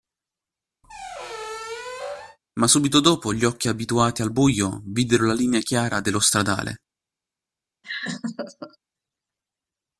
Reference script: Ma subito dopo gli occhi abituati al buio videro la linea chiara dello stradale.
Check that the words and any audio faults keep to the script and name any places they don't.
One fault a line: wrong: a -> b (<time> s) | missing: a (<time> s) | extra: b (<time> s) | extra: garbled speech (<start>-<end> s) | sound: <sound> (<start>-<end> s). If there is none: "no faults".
sound: squeak (0.8-2.4 s)
sound: laugh (7.8-8.8 s)